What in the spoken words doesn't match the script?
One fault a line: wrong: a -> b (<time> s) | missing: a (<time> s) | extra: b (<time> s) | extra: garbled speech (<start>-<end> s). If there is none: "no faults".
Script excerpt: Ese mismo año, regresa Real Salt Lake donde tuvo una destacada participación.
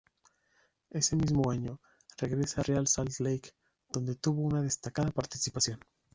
no faults